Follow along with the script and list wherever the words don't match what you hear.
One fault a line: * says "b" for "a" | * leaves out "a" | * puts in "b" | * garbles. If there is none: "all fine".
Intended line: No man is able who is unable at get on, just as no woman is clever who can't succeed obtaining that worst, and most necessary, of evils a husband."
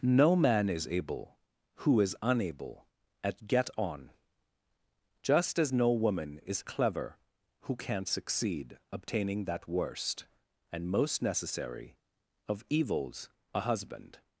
all fine